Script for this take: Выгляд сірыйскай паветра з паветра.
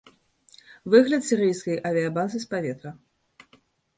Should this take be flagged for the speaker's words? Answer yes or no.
yes